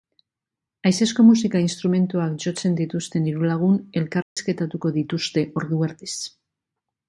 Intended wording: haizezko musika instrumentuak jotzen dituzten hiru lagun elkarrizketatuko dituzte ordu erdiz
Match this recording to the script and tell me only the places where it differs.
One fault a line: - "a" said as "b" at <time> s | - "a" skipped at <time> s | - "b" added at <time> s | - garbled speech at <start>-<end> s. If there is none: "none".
none